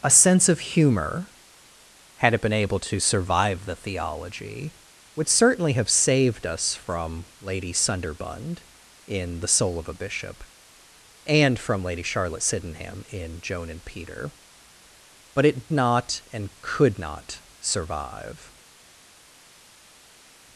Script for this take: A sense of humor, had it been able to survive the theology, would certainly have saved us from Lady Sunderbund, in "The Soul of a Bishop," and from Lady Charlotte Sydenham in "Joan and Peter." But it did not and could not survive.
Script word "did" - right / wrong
wrong